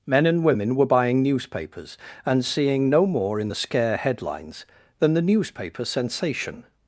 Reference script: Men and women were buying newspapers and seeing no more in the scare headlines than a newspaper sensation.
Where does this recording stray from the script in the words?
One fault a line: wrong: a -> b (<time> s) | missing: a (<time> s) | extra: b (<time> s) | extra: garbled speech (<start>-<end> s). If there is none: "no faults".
wrong: a -> the (5.1 s)